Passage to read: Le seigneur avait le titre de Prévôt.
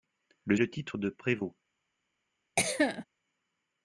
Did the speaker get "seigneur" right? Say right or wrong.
wrong